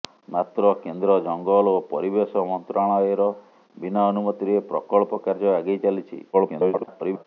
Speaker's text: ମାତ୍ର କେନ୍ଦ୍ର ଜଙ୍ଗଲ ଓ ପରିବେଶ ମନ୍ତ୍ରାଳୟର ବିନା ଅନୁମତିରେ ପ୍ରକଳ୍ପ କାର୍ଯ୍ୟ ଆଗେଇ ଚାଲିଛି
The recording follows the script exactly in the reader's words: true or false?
false